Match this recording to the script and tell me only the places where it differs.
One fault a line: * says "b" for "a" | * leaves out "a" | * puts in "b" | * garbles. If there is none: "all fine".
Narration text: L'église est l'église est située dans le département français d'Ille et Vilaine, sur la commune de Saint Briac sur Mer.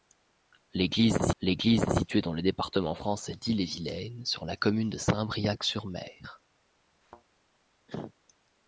all fine